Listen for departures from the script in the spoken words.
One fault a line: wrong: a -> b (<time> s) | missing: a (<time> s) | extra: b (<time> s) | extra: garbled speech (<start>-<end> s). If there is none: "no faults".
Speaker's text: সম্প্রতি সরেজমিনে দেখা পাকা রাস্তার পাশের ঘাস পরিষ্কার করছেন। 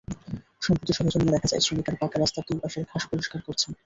extra: যায় শ্রমিকেরা (1.5 s)
extra: দুই (2.5 s)